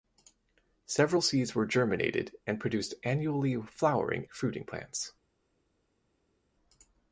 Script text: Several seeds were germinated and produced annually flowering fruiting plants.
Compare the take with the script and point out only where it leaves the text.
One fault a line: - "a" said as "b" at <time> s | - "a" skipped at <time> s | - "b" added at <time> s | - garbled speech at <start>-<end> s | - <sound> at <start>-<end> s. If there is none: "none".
none